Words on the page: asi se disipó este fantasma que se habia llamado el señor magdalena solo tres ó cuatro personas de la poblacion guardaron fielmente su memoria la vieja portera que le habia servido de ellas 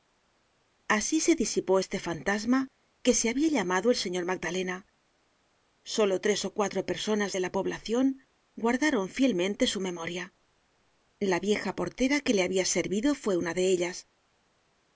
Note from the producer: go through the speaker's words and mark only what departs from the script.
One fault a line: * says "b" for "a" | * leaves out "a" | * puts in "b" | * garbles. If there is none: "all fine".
* puts in "fue una"